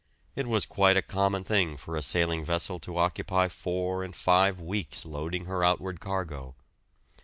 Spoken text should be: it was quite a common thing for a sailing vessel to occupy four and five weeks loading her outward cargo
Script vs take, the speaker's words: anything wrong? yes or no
no